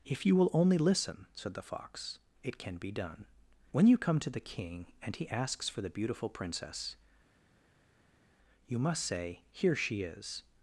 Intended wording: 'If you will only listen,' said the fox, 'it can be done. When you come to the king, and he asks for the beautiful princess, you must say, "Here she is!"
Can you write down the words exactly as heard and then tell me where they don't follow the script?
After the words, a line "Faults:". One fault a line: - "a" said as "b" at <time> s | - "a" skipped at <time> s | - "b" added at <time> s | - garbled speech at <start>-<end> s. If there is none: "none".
'If you will only listen,' said the fox, 'it can be done. When you come to the king, and he asks for the beautiful princess, you must say, "Here she is!"
Faults:
none